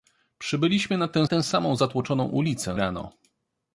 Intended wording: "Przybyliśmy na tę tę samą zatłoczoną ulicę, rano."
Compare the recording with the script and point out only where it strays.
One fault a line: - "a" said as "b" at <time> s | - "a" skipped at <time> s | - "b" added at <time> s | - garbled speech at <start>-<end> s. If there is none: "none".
none